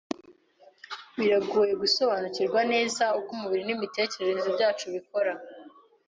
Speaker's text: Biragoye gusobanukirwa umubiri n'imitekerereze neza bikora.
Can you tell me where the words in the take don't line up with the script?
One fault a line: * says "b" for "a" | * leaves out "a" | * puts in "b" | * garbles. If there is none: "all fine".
* puts in "neza uko"
* says "byacu" for "neza"